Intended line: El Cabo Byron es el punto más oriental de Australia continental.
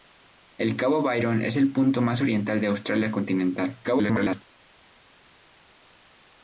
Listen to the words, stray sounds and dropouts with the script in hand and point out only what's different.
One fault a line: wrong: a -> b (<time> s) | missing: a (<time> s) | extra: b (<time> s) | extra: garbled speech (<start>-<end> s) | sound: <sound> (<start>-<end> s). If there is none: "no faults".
extra: garbled speech (3.8-4.4 s)